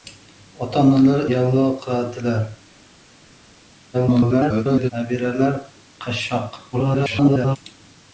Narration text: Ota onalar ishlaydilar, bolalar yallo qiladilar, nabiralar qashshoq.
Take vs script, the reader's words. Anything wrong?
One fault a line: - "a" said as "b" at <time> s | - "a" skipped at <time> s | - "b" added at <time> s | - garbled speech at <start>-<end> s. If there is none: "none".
- "ishlaydilar bolalar" skipped at 1.2 s
- garbled speech at 3.9-4.9 s
- garbled speech at 6.7-7.6 s